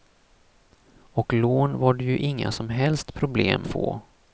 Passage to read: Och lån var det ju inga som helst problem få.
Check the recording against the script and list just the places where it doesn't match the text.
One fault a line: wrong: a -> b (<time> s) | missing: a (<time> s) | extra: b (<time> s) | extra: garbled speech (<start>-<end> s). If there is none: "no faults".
no faults